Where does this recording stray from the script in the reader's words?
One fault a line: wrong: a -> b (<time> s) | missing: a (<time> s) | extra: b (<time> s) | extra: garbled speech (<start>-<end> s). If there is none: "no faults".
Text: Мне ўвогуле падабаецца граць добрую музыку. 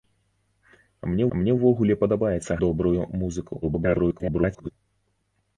extra: мне (1.4 s)
missing: граць (2.6 s)
extra: garbled speech (3.6-4.7 s)